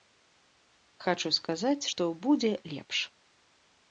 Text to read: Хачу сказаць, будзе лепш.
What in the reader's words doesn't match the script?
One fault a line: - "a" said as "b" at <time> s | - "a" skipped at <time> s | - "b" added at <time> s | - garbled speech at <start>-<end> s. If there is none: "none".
- "што" added at 1.9 s